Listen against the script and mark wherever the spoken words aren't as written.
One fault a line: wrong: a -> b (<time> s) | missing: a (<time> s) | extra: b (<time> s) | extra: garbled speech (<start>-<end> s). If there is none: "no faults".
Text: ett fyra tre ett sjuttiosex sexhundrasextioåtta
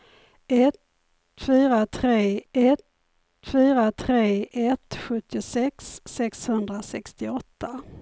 extra: fyra tre ett (3.5 s)